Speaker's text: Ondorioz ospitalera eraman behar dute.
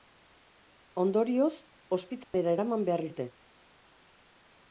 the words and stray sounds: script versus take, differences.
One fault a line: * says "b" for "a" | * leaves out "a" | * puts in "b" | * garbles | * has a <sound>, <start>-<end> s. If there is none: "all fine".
* has a dropout, 2.2-2.3 s